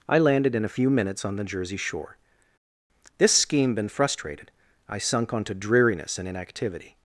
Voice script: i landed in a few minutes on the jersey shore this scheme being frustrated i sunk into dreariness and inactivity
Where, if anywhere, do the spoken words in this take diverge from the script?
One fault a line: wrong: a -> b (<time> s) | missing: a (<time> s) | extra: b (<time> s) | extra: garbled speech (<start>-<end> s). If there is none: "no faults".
wrong: being -> been (3.7 s)
wrong: into -> onto (5.3 s)